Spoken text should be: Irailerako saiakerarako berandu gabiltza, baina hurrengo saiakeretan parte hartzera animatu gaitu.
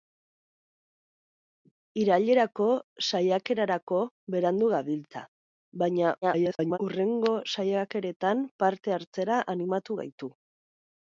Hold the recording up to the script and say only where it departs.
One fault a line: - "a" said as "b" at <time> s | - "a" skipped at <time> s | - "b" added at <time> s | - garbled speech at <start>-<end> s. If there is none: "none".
- garbled speech at 6.2-6.8 s